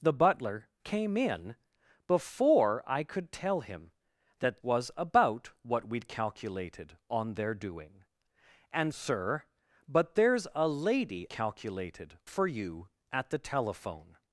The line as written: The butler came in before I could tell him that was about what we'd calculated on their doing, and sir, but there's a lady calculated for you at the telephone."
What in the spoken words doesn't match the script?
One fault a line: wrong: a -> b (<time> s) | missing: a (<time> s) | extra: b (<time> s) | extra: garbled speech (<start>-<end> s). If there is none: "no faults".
no faults